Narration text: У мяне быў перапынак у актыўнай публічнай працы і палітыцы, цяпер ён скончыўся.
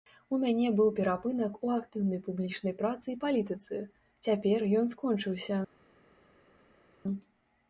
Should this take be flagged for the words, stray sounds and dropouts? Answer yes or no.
no